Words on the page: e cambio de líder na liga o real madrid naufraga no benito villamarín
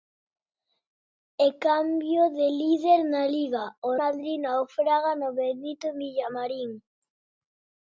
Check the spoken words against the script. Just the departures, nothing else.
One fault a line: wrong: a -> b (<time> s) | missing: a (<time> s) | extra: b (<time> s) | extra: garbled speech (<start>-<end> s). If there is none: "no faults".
missing: real (3.9 s)